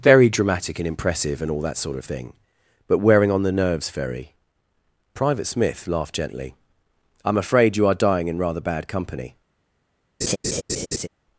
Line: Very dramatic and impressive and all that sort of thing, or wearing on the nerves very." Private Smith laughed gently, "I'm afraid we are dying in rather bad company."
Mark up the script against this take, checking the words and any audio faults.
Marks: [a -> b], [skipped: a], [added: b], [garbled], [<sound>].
Very dramatic and impressive and all that sort of thing, [or -> but] wearing on the nerves very." Private Smith laughed gently, "I'm afraid [we -> you] are dying in rather bad company." [laugh]